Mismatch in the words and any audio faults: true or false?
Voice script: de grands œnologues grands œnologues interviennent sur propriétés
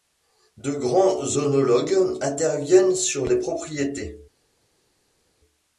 true